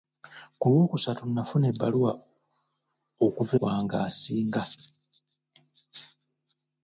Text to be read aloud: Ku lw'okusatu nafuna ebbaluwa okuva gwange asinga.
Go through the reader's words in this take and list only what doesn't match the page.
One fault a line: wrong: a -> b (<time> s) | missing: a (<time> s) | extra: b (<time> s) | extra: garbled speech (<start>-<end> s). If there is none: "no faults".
no faults